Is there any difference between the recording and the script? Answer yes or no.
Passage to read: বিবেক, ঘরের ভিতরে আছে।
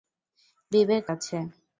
yes